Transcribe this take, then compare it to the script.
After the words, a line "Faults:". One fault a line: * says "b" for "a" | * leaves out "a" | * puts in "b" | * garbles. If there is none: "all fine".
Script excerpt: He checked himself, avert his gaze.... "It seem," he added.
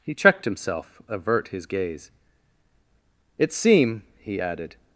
He checked himself, avert his gaze.... "It seem," he added.
Faults:
all fine